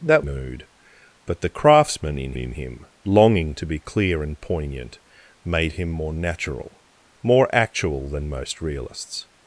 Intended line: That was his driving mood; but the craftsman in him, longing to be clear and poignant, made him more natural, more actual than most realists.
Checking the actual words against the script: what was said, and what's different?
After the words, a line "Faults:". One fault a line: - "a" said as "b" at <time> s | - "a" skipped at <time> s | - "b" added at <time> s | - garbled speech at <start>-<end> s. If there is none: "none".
That mood; but the craftsman in in him, longing to be clear and poignant, made him more natural, more actual than most realists.
Faults:
- "was his driving" skipped at 0.2 s
- "in" added at 2.4 s